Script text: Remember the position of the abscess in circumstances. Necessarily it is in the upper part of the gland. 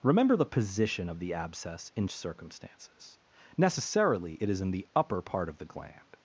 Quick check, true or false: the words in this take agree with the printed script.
true